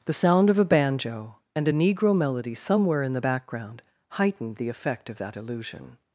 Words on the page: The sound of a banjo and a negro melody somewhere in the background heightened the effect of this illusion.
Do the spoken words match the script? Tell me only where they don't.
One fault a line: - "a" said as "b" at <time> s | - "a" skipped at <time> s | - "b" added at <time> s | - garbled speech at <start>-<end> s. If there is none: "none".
- "this" said as "that" at 5.2 s